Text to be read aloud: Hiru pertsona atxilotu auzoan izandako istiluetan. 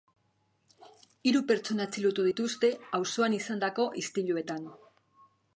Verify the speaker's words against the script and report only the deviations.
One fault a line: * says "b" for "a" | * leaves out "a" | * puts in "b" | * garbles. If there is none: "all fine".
* puts in "dituzte"